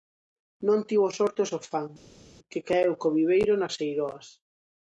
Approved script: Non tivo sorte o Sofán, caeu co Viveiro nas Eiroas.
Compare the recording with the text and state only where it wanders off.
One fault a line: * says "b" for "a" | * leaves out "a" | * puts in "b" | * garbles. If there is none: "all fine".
* puts in "que"